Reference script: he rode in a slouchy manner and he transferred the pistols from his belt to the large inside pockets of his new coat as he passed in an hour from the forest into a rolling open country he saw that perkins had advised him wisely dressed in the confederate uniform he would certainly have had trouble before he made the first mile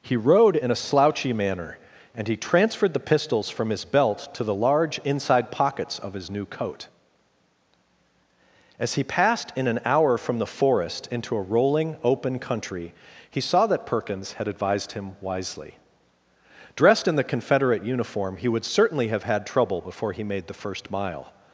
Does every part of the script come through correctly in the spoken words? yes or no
yes